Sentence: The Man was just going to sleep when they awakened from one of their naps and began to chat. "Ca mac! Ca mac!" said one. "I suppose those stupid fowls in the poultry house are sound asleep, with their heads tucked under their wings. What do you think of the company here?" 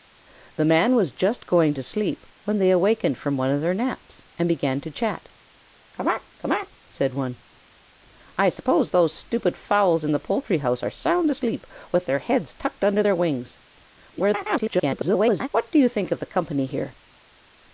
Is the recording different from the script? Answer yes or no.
yes